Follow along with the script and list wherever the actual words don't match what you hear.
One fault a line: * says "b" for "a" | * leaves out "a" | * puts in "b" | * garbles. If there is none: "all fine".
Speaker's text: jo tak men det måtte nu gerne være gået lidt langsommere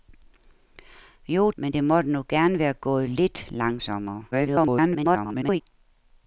* leaves out "tak"
* garbles